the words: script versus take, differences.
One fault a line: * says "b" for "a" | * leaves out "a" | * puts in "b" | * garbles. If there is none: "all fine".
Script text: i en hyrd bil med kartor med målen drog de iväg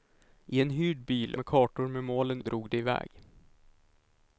all fine